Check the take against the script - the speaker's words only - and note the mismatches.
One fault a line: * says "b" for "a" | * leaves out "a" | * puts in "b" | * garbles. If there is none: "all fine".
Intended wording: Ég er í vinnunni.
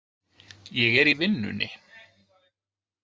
all fine